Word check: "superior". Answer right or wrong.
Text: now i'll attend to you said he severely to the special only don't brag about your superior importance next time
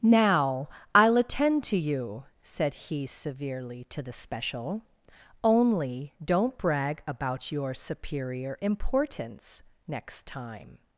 right